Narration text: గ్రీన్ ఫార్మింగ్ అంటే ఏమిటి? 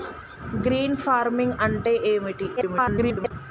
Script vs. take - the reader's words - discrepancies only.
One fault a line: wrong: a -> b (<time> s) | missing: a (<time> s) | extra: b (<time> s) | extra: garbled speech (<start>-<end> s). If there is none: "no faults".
extra: garbled speech (2.6-3.3 s)